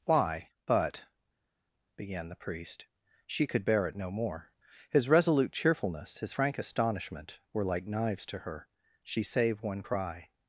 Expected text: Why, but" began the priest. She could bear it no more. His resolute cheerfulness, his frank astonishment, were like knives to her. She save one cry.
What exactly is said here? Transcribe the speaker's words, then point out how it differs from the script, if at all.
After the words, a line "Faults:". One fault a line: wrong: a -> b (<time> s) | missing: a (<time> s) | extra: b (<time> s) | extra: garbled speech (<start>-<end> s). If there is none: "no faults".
Why, but" began the priest. She could bear it no more. His resolute cheerfulness, his frank astonishment, were like knives to her. She save one cry.
Faults:
no faults